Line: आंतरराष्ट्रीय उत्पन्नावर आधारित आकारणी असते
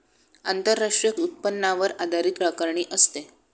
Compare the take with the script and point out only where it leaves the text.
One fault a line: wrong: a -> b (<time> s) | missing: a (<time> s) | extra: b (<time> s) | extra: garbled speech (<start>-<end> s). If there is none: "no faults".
no faults